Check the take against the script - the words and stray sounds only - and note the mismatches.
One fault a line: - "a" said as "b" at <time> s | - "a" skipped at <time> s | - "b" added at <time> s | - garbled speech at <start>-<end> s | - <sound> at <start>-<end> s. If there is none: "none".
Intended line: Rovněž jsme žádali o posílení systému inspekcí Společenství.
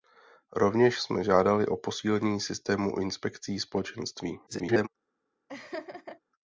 - garbled speech at 4.5-4.9 s
- laugh at 5.5-6.2 s